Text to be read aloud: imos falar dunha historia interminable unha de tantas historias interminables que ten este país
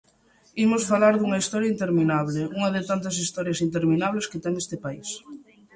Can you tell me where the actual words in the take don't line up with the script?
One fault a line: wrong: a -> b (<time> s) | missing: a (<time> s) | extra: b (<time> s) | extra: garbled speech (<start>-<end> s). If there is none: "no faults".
no faults